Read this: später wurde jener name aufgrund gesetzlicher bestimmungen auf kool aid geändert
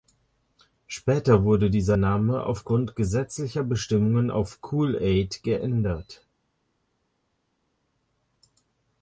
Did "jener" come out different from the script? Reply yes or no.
yes